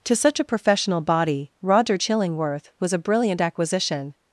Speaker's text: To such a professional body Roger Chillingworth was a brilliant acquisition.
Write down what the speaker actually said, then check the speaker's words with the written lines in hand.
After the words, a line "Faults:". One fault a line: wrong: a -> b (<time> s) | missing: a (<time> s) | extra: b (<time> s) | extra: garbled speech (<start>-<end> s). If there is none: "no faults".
To such a professional body Roger Chillingworth was a brilliant acquisition.
Faults:
no faults